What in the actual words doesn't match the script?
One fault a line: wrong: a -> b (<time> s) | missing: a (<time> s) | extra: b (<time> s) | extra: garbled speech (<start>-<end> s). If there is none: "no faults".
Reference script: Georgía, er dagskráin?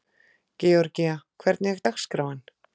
extra: hvernig (1.4 s)